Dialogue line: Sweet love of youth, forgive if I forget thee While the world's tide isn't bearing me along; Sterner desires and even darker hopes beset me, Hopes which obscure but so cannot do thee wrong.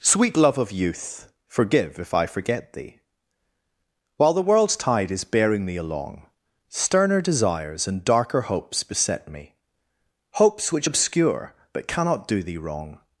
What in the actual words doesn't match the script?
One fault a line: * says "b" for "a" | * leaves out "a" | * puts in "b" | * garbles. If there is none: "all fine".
* says "is" for "isn't"
* leaves out "even"
* leaves out "so"